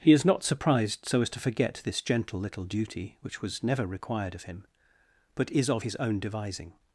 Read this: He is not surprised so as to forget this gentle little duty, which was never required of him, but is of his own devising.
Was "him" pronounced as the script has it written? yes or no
yes